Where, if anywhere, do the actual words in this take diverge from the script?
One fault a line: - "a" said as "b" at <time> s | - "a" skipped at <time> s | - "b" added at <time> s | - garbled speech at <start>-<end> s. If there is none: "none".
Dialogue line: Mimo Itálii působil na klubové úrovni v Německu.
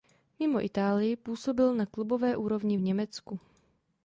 none